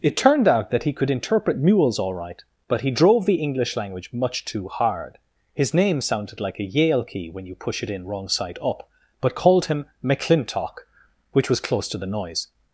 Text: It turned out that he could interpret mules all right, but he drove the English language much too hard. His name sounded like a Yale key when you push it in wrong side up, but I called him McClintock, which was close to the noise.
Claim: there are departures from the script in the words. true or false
true